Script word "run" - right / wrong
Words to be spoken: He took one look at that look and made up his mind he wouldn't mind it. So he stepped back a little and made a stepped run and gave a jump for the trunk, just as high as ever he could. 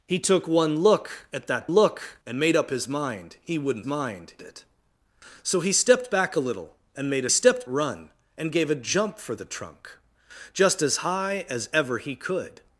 right